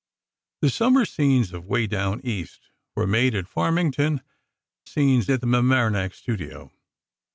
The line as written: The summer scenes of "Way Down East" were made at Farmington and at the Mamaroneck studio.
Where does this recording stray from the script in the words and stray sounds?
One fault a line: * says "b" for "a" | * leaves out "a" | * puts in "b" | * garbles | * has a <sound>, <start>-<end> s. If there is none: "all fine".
* says "scenes" for "and"